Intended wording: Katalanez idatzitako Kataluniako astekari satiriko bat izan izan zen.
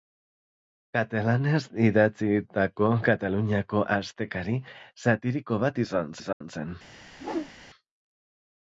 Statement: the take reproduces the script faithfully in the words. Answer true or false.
true